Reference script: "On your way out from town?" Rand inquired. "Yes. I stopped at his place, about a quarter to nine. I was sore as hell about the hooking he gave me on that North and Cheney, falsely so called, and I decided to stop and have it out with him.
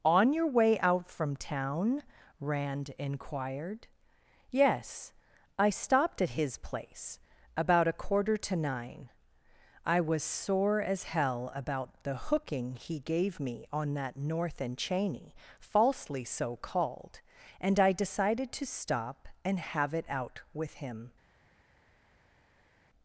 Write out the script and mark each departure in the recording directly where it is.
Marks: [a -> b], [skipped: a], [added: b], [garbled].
"On your way out from town?" Rand inquired. "Yes. I stopped at his place, about a quarter to nine. I was sore as hell about the hooking he gave me on that North and Cheney, falsely so called, and I decided to stop and have it out with him.